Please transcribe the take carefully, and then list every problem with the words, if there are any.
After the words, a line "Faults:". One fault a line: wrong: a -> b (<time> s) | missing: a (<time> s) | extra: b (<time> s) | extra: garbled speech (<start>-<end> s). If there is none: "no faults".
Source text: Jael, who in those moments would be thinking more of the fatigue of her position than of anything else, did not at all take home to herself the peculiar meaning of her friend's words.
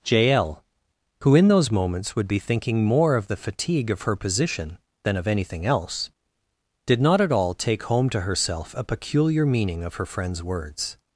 Jael, who in those moments would be thinking more of the fatigue of her position than of anything else, did not at all take home to herself a peculiar meaning of her friend's words.
Faults:
wrong: the -> a (8.8 s)